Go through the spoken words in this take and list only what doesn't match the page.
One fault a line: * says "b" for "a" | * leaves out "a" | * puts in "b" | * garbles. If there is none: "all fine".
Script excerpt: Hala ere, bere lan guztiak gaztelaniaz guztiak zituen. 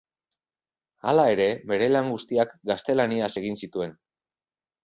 * says "egin" for "guztiak"